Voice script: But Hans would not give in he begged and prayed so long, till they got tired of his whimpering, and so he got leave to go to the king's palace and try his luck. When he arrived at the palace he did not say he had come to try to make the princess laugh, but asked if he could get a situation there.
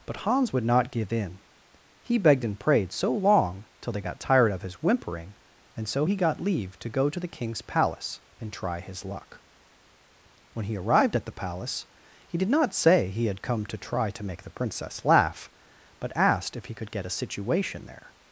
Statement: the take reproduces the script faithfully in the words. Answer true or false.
true